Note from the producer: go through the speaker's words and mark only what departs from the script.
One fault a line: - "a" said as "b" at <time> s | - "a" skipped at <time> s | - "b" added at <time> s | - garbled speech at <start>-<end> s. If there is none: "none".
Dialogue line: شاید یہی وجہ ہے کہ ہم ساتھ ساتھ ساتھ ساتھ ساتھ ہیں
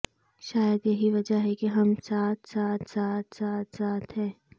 none